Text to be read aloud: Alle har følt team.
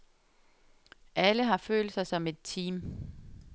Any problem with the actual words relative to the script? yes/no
yes